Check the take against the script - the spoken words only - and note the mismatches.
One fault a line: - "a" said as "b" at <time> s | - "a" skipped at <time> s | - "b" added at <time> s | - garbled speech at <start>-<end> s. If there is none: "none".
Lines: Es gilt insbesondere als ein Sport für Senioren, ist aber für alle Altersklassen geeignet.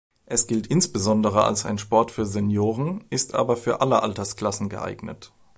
none